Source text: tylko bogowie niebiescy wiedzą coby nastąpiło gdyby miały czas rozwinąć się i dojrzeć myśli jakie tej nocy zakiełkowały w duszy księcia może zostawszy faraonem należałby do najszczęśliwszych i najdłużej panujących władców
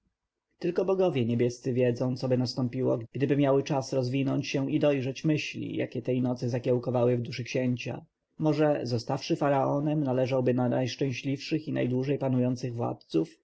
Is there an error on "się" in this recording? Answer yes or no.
no